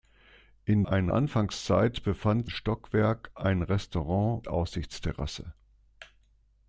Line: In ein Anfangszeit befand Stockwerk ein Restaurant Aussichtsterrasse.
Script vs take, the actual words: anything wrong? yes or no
no